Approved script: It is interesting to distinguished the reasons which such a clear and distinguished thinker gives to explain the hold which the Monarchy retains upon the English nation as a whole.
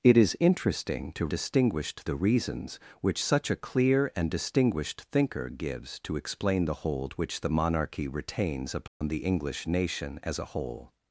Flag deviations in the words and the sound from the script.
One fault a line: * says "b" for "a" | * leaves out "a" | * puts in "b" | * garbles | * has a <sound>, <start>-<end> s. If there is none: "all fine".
* has a dropout, 8.9-9.0 s